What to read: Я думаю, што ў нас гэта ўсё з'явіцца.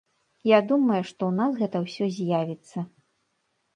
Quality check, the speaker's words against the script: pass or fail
pass